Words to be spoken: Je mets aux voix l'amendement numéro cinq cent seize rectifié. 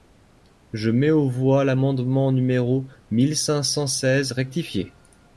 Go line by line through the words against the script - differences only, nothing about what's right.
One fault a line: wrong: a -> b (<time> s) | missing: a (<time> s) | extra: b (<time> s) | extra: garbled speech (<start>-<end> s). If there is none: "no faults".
extra: mille (3.1 s)